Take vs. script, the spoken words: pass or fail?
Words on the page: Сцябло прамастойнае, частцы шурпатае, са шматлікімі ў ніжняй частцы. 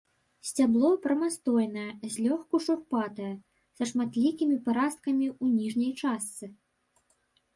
fail